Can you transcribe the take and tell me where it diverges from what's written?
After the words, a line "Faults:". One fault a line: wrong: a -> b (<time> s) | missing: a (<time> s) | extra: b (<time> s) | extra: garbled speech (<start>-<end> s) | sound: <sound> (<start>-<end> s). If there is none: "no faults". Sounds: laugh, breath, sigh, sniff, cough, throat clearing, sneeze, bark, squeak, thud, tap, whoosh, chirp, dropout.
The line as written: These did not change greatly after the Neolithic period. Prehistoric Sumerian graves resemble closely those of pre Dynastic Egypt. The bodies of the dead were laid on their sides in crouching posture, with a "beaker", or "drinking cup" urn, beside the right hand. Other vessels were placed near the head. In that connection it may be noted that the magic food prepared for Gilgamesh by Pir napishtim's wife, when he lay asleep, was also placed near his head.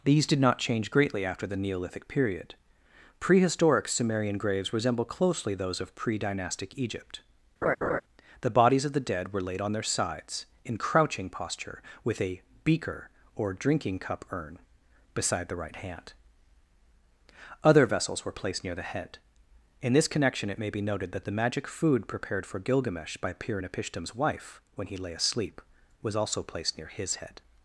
These did not change greatly after the Neolithic period. Prehistoric Sumerian graves resemble closely those of pre Dynastic Egypt. The bodies of the dead were laid on their sides in crouching posture, with a "beaker", or "drinking cup" urn, beside the right hand. Other vessels were placed near the head. In this connection it may be noted that the magic food prepared for Gilgamesh by Pir napishtim's wife, when he lay asleep, was also placed near his head.
Faults:
sound: laugh (7.6-8.0 s)
wrong: that -> this (19.9 s)